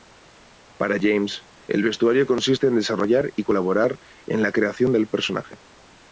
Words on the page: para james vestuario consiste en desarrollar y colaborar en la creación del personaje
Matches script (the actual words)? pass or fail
fail